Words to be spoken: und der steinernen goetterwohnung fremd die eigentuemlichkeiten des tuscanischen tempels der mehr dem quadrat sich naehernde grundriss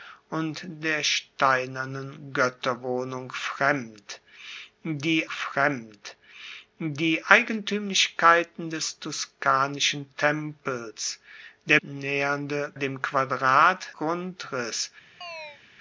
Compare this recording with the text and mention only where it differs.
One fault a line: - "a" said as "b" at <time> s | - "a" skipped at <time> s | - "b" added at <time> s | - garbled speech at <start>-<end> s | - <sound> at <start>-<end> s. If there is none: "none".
- "fremd die" added at 5.3 s
- "mehr" said as "naehernde" at 11.8 s
- "sich naehernde" skipped at 13.9 s
- chirp at 15.2-15.6 s